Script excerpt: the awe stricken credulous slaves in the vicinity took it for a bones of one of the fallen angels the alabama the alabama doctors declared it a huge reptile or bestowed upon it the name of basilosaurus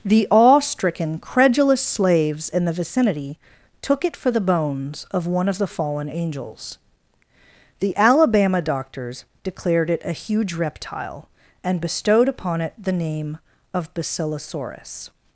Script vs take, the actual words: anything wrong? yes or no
yes